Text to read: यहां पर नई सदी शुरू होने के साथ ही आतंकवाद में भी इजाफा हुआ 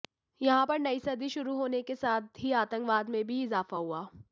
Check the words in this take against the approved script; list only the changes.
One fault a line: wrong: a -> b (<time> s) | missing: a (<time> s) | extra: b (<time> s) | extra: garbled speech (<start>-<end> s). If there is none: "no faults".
no faults